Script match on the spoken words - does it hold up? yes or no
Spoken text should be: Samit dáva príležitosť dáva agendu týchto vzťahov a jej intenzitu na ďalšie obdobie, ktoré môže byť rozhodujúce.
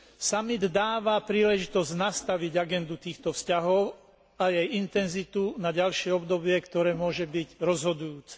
no